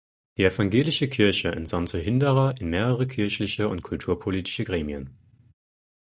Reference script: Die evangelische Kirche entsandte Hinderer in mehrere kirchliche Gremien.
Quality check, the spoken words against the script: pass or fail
fail